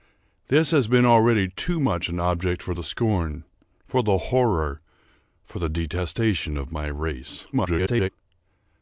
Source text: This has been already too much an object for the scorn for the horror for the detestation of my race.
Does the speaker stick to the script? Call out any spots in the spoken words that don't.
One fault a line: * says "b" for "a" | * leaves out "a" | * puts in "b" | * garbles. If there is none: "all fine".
* garbles